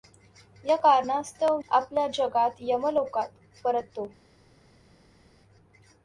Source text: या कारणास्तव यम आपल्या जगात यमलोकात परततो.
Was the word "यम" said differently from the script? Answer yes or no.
yes